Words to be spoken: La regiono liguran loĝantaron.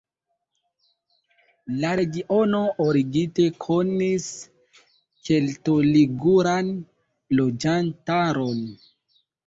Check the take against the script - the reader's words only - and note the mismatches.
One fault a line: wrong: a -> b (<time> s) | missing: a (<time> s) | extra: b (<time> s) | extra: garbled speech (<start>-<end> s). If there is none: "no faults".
extra: origine konis kelto (2.8 s)